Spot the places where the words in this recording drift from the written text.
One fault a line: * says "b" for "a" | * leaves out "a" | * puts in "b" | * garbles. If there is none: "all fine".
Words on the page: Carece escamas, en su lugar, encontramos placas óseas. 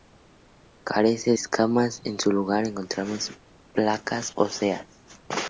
all fine